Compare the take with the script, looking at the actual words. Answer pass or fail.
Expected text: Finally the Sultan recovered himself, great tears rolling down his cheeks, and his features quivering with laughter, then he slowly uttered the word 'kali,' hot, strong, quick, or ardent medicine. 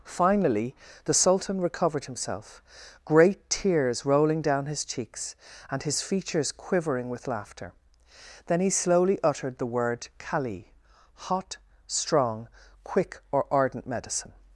pass